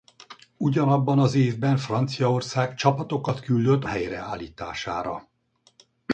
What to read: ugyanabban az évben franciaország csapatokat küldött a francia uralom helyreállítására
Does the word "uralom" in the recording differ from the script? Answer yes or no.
yes